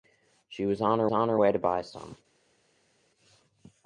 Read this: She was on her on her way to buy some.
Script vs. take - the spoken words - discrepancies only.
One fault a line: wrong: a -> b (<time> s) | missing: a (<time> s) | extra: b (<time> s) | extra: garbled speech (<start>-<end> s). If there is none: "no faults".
no faults